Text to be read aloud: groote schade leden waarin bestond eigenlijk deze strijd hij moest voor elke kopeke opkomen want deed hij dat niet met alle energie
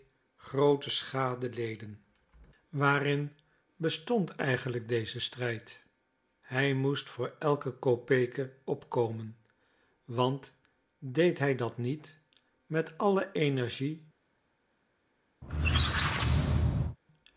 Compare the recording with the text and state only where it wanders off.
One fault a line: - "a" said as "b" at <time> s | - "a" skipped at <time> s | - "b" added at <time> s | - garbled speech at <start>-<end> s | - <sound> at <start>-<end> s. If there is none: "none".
- squeak at 15.4-17.0 s